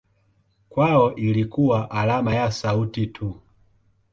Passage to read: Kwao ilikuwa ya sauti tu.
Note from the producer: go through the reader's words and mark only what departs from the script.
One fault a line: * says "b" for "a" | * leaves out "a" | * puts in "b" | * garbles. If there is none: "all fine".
* puts in "alama"